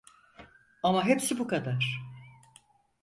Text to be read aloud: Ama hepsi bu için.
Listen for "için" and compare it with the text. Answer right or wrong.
wrong